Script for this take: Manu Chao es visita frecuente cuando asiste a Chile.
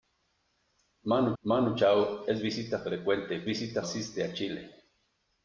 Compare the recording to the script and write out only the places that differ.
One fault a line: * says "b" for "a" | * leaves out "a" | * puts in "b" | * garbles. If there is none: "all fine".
* puts in "manu"
* says "visita" for "cuando"